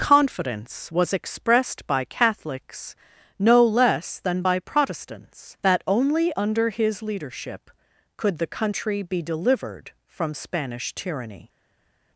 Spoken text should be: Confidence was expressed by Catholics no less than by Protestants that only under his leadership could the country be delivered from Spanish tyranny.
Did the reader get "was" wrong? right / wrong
right